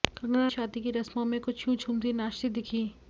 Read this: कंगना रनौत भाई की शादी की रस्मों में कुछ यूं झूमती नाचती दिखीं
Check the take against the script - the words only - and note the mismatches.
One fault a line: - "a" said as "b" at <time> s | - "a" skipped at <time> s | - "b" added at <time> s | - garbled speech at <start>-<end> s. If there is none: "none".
- "रनौत भाई की" skipped at 0.5 s